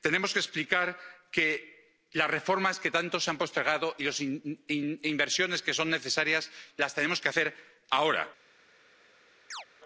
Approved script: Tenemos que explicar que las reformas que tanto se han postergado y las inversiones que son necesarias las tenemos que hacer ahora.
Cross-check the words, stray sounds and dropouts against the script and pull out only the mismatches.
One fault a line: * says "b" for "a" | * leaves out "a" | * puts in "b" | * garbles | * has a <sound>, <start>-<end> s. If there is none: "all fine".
* has a chirp, 9.5-9.7 s